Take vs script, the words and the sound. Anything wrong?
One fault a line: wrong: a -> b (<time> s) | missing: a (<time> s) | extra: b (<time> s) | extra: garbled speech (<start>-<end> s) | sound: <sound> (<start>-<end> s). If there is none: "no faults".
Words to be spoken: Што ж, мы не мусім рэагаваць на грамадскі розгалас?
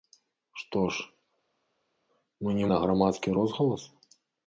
missing: мусім рэагаваць (2.7 s)